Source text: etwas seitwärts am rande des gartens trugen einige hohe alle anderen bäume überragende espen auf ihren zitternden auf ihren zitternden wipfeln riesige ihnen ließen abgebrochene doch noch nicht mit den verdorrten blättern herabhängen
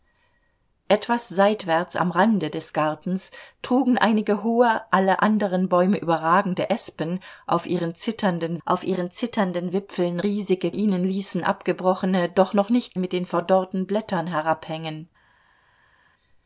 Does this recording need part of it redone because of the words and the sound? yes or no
no